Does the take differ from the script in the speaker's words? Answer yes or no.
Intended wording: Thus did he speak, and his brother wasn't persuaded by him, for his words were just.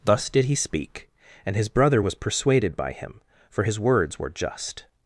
yes